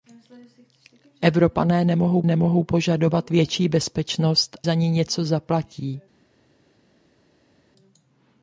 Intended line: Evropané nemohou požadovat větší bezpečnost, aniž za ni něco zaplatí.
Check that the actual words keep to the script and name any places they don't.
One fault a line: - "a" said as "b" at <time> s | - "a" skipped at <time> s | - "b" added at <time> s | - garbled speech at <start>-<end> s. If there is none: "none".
- "nemohou" added at 2.3 s
- "aniž" skipped at 4.6 s